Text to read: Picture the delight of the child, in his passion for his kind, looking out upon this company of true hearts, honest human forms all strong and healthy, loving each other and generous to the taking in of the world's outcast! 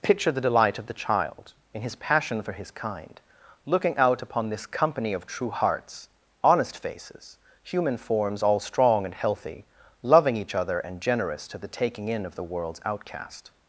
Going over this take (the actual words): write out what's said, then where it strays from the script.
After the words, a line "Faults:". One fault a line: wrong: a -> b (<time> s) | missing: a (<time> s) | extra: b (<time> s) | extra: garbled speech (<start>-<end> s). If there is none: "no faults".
Picture the delight of the child, in his passion for his kind, looking out upon this company of true hearts, honest faces, human forms all strong and healthy, loving each other and generous to the taking in of the world's outcast!
Faults:
extra: faces (6.8 s)